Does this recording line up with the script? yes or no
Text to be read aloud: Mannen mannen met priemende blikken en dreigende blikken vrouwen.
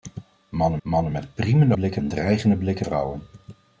yes